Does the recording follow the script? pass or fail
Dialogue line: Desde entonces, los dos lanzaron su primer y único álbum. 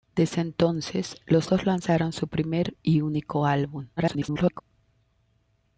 fail